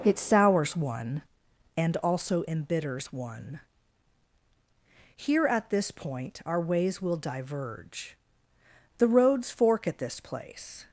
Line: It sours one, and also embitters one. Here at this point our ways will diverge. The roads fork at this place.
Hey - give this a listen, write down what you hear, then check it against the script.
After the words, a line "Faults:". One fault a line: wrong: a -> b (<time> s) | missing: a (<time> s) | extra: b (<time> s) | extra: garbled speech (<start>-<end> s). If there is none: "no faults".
It sours one, and also embitters one. Here at this point our ways will diverge. The roads fork at this place.
Faults:
no faults